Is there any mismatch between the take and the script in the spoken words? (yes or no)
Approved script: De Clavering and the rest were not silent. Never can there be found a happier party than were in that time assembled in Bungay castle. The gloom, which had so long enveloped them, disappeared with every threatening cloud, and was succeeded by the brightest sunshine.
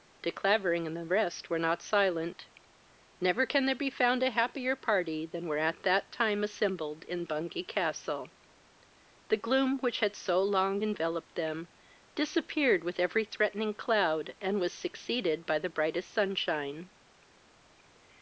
yes